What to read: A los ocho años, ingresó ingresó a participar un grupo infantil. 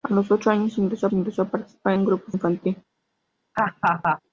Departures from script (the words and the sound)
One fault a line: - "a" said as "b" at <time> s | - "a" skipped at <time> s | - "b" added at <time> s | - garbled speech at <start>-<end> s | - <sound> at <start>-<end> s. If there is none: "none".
- laugh at 3.5-4.2 s